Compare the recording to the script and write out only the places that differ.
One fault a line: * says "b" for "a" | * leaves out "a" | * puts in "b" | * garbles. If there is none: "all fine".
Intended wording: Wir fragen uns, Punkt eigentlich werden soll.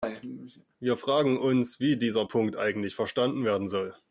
* puts in "wie dieser"
* puts in "verstanden"